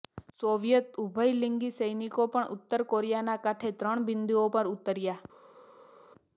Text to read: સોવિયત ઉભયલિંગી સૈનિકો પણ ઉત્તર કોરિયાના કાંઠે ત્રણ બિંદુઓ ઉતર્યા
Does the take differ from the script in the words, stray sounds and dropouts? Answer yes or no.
yes